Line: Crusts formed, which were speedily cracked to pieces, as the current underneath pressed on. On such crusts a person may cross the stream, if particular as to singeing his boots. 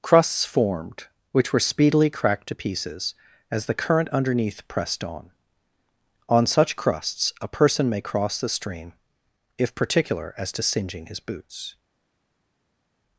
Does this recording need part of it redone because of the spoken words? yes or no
no